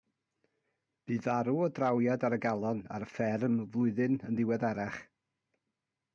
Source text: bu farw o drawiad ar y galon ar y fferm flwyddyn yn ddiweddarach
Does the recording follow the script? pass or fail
pass